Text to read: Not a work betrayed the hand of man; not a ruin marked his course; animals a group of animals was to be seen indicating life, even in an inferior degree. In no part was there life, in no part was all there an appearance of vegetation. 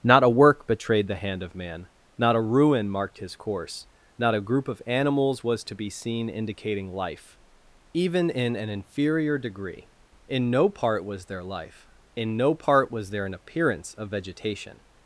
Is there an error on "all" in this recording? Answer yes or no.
yes